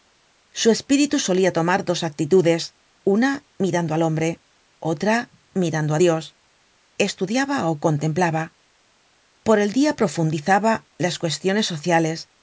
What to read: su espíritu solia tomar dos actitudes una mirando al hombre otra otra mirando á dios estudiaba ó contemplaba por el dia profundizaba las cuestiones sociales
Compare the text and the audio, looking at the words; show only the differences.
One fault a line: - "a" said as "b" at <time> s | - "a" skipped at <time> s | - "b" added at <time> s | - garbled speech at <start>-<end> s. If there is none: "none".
- "otra" skipped at 5.2 s